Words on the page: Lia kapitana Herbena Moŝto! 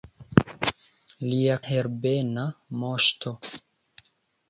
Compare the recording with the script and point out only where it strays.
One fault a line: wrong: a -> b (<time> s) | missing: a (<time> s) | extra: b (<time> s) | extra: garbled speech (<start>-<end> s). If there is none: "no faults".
missing: kapitana (1.6 s)